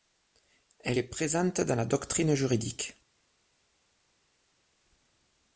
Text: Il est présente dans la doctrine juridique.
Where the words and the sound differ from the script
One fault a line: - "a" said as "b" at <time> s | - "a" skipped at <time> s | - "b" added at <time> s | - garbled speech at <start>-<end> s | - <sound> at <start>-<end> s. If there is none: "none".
- "Il" said as "Elle" at 0.8 s